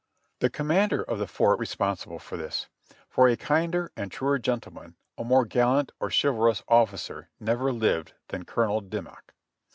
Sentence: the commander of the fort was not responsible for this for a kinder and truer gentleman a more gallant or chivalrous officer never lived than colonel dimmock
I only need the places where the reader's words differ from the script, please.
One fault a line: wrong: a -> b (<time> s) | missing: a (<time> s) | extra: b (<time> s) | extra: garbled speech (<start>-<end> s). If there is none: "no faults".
missing: was not (1.6 s)